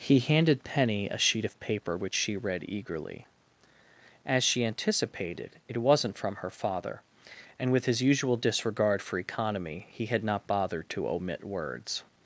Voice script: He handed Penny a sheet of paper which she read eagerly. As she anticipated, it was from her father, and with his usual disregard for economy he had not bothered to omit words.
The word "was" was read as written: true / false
false